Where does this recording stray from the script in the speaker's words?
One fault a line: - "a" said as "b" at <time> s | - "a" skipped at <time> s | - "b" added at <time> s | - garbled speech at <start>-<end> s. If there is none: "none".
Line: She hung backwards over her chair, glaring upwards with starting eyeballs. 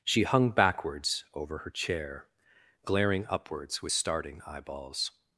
none